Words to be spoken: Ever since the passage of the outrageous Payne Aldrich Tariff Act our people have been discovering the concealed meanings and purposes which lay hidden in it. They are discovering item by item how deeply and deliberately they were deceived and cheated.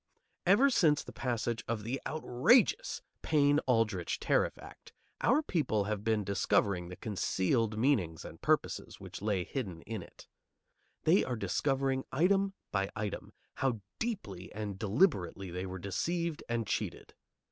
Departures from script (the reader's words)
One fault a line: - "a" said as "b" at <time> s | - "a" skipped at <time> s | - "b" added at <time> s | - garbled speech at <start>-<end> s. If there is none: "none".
none